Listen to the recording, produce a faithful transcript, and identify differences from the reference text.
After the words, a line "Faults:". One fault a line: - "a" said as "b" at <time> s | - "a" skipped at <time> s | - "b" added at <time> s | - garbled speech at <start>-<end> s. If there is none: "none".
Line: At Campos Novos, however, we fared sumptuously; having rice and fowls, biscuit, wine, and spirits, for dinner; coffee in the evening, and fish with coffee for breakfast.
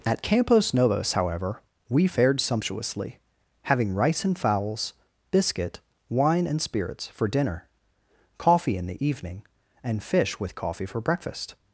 At Campos Novos, however, we fared sumptuously; having rice and fowls, biscuit, wine, and spirits, for dinner; coffee in the evening, and fish with coffee for breakfast.
Faults:
none